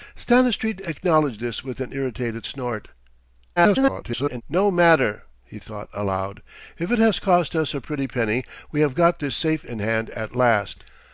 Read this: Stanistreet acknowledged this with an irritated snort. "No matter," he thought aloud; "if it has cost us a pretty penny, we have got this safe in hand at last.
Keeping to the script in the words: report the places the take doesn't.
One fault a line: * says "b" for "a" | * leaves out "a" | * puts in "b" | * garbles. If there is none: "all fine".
* garbles